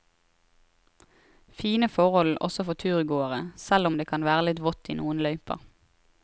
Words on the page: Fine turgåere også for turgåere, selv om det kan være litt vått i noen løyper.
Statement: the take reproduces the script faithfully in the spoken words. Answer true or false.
false